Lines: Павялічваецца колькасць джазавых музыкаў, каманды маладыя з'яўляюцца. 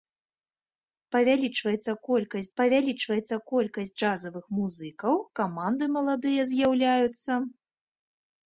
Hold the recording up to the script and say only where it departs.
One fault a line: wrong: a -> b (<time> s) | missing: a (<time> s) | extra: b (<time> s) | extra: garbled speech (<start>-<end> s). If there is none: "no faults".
extra: павялічваецца колькасць (2.6 s)